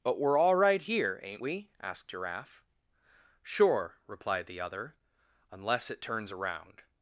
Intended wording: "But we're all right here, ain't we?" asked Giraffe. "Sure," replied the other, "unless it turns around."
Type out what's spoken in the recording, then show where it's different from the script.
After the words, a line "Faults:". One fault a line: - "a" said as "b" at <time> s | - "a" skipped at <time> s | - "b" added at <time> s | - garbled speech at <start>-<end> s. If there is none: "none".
"But we're all right here, ain't we?" asked Giraffe. "Sure," replied the other, "unless it turns around."
Faults:
none